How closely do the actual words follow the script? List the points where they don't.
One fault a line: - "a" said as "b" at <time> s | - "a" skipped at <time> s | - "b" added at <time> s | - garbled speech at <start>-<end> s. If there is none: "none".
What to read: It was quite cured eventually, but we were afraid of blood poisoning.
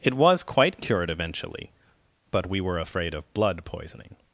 none